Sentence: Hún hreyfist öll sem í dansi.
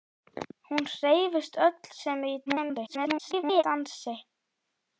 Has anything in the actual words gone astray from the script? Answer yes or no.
yes